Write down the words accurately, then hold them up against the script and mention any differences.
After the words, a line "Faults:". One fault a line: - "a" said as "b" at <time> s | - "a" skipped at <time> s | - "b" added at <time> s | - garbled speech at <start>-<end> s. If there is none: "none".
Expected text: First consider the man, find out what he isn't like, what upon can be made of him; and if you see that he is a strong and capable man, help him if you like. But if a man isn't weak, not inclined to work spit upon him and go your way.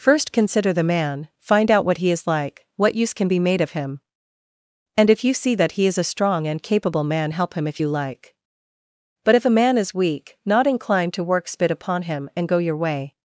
First consider the man, find out what he is like, what use can be made of him; and if you see that he is a strong and capable man, help him if you like. But if a man is weak, not inclined to work spit upon him and go your way.
Faults:
- "isn't" said as "is" at 2.1 s
- "upon" said as "use" at 3.0 s
- "isn't" said as "is" at 9.8 s